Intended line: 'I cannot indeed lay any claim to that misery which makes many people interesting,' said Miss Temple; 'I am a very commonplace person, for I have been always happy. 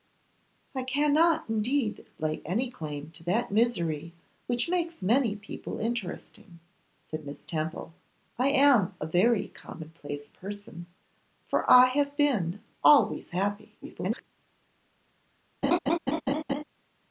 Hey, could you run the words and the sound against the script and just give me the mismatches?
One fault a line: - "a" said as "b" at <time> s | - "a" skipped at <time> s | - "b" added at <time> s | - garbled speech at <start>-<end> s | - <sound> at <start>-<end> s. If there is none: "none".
- garbled speech at 13.8-14.2 s
- laugh at 15.6-16.6 s